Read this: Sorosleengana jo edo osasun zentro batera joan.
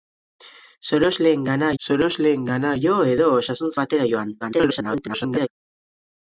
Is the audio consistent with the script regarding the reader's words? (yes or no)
no